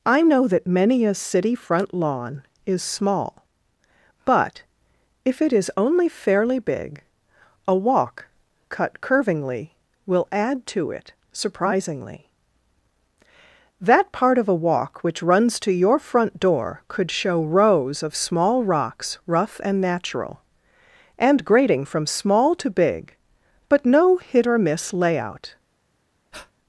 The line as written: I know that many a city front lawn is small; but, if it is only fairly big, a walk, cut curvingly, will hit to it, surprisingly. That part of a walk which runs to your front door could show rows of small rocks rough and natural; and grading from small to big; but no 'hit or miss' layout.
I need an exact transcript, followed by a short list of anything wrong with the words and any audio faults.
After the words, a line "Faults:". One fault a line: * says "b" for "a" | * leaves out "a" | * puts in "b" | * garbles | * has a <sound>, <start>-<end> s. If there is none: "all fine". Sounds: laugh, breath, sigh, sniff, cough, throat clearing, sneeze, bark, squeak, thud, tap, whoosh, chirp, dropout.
I know that many a city front lawn is small; but, if it is only fairly big, a walk, cut curvingly, will add to it, surprisingly. That part of a walk which runs to your front door could show rows of small rocks rough and natural; and grading from small to big; but no 'hit or miss' layout.
Faults:
* says "add" for "hit"
* has a breath, 26.3-26.5 s